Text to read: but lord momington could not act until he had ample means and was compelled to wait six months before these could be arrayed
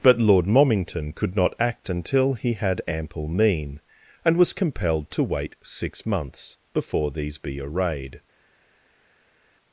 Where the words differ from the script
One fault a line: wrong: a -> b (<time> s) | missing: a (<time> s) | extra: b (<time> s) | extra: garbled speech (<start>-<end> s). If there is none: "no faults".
wrong: means -> mean (3.3 s)
missing: could (7.4 s)